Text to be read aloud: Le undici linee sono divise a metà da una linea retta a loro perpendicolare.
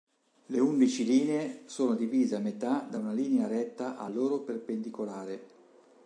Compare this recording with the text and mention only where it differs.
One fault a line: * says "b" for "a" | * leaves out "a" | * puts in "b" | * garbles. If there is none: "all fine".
all fine